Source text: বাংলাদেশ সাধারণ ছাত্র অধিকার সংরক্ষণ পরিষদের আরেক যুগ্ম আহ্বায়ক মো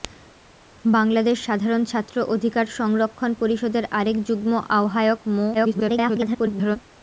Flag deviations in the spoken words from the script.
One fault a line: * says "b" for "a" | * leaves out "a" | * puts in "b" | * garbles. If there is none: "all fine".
* garbles